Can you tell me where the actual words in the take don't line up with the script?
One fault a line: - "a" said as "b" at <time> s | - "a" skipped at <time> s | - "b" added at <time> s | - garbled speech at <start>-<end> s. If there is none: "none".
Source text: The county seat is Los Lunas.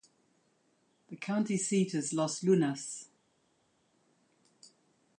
none